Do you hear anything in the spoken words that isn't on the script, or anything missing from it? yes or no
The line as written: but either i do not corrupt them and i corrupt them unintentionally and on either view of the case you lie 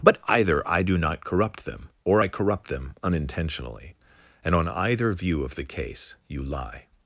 yes